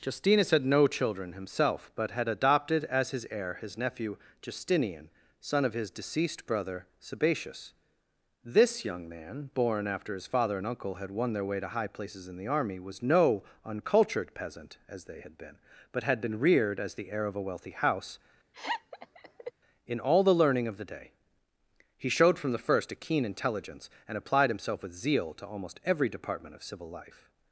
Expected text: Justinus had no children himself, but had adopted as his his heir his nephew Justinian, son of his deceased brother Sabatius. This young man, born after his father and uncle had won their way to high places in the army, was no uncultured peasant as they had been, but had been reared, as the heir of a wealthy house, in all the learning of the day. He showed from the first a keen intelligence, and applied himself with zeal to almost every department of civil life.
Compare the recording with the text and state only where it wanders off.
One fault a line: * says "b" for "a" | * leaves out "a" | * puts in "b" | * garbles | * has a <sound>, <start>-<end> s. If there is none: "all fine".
* leaves out "his"
* has a laugh, 18.5-19.5 s